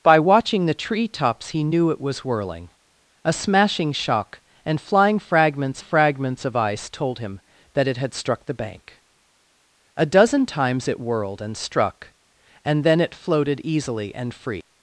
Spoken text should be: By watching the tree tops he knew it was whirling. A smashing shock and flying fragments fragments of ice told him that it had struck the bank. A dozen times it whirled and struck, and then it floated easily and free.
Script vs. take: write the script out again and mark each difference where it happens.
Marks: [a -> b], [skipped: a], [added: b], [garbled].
By watching the tree tops he knew it was whirling. A smashing shock and flying fragments fragments of ice told him that it had struck the bank. A dozen times it whirled and struck, and then it floated easily and free.